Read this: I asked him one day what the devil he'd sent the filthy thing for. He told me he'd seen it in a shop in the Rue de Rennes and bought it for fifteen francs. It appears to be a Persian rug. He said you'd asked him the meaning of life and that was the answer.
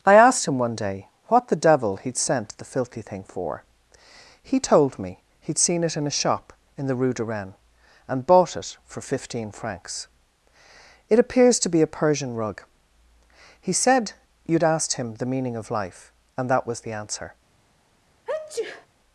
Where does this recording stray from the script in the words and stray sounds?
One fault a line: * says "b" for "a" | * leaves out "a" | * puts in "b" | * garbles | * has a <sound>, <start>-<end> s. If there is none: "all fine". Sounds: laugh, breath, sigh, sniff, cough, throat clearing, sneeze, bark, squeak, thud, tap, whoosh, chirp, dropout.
* has a sneeze, 18.3-18.9 s